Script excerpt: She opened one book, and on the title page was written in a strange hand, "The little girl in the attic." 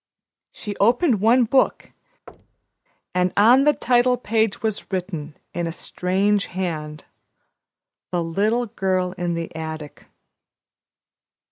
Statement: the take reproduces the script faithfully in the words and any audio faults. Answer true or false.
false